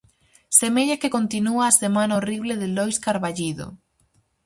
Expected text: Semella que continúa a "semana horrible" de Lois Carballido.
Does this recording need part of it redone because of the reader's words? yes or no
no